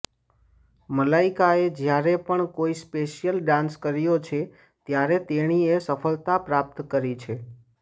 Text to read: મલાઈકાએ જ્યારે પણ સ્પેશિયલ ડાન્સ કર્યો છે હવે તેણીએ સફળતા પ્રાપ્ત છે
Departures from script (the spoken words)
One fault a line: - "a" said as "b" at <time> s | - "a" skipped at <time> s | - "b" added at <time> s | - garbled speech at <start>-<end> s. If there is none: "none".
- "કોઈ" added at 2.5 s
- "હવે" said as "ત્યારે" at 4.9 s
- "કરી" added at 6.9 s